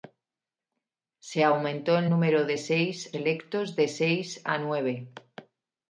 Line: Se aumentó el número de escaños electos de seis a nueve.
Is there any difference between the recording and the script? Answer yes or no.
yes